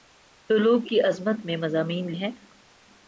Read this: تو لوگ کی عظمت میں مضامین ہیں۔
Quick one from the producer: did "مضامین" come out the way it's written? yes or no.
yes